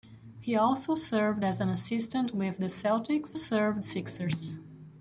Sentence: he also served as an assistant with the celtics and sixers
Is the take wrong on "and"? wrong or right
wrong